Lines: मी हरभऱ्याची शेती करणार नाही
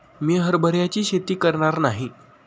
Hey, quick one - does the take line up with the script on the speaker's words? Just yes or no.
yes